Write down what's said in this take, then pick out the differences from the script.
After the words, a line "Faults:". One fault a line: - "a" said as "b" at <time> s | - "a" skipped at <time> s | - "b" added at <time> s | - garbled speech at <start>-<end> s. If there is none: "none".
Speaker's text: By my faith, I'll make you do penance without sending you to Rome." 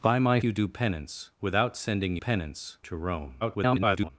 By my you do penance without sending penance to Rome." [garbled]
Faults:
- "faith I'll make" skipped at 0.4 s
- "you" said as "penance" at 2.2 s
- garbled speech at 3.4-4.1 s